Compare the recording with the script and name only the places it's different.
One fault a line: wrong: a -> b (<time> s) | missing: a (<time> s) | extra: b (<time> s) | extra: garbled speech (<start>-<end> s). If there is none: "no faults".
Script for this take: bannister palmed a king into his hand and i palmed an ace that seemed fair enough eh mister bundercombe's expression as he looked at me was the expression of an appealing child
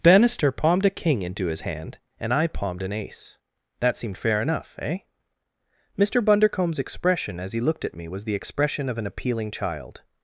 no faults